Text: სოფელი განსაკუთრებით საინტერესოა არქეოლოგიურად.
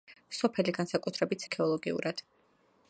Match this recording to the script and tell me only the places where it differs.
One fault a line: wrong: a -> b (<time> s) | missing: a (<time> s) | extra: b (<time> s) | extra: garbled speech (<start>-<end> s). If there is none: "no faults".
missing: საინტერესოა (1.4 s)